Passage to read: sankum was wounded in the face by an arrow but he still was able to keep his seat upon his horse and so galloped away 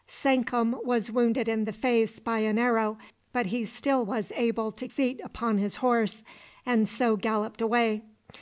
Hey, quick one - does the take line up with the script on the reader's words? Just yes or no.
no